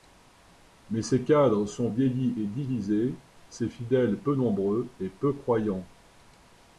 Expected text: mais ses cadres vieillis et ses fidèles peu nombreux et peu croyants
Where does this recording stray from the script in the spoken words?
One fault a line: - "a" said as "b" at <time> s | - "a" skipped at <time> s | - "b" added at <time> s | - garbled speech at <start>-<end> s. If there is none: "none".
- "sont" added at 1.7 s
- "divisés" added at 2.5 s